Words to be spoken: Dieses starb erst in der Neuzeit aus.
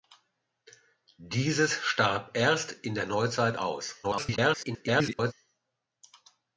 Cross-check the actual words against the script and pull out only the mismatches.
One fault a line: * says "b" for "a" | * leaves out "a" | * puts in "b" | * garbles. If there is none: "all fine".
* garbles